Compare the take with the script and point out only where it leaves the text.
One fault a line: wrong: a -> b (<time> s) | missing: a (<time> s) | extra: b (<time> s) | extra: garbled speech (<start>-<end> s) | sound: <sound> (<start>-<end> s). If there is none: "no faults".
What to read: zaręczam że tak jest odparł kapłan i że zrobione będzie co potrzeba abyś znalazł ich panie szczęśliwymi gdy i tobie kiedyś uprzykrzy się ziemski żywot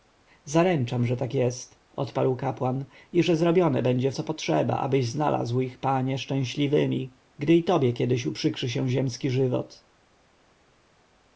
no faults